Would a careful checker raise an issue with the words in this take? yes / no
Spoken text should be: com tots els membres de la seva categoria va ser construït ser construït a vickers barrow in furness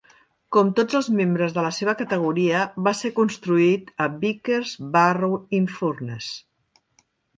yes